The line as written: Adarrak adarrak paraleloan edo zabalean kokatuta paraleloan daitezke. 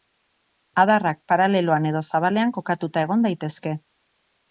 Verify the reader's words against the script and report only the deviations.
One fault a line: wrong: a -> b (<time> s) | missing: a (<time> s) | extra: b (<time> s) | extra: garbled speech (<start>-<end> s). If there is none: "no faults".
missing: adarrak (1.2 s)
wrong: paraleloan -> egon (3.1 s)